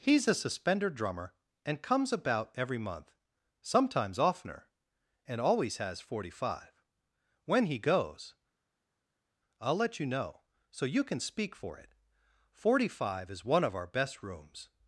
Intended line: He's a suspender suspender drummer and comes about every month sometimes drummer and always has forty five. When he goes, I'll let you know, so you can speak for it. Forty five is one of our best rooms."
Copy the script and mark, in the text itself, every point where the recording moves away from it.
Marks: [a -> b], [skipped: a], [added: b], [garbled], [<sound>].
He's a suspender [skipped: suspender] drummer and comes about every month sometimes [drummer -> oftener] and always has forty five. When he goes, I'll let you know, so you can speak for it. Forty five is one of our best rooms."